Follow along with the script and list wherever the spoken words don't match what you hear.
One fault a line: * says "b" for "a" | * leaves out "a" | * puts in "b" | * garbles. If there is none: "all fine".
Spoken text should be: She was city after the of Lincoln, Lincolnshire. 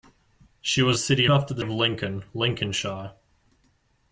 all fine